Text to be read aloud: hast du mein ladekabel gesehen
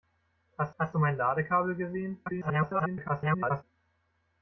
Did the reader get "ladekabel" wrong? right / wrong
right